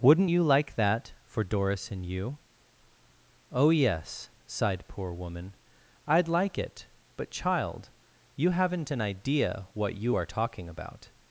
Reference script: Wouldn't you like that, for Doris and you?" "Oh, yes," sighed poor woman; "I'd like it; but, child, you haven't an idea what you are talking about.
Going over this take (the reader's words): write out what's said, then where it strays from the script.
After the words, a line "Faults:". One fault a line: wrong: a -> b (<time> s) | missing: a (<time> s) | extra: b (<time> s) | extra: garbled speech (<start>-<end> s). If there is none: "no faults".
Wouldn't you like that, for Doris and you?" "Oh, yes," sighed poor woman; "I'd like it; but, child, you haven't an idea what you are talking about.
Faults:
no faults